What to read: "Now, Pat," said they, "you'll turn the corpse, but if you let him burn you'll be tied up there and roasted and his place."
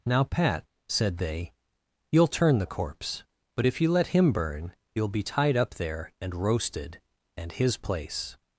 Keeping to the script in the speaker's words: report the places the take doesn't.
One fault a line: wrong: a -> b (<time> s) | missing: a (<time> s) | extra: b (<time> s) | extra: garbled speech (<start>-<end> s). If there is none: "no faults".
no faults